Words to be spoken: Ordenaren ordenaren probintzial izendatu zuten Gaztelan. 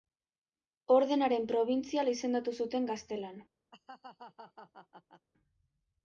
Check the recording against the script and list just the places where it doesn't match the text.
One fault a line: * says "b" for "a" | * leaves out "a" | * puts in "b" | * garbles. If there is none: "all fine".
* leaves out "ordenaren"